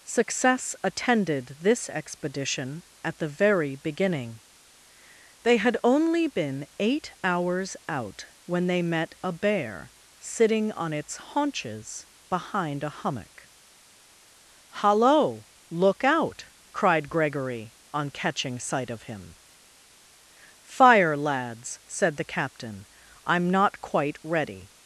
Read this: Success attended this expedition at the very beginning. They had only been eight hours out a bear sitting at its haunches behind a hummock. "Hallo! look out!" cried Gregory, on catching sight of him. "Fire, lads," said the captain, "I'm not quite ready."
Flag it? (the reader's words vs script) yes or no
yes